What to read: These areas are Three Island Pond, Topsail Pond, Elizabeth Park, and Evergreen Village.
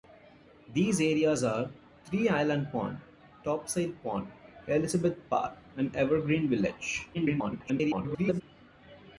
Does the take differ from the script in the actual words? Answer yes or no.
yes